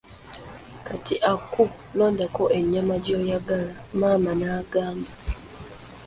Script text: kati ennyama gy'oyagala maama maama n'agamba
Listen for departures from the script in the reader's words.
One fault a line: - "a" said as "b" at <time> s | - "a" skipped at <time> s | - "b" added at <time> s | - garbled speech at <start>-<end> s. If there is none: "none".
- "aku londako" added at 1.3 s
- "maama" skipped at 4.3 s